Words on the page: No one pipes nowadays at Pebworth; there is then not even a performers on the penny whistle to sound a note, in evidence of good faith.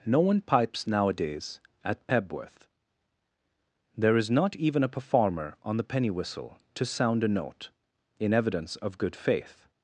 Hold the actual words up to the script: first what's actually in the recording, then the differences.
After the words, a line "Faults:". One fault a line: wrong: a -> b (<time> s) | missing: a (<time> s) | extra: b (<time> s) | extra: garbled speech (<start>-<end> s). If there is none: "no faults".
No one pipes nowadays at Pebworth; there is not even a performer on the penny whistle to sound a note, in evidence of good faith.
Faults:
missing: then (4.3 s)
wrong: performers -> performer (4.9 s)